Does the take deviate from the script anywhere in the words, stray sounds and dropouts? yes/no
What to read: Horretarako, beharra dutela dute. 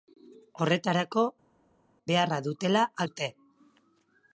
no